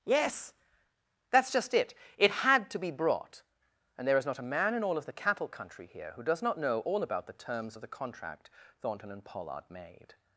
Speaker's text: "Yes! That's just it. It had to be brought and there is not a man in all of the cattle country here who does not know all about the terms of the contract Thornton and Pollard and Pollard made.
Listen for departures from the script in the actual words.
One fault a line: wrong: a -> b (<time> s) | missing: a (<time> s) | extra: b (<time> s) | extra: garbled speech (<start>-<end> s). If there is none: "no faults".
missing: and Pollard (9.6 s)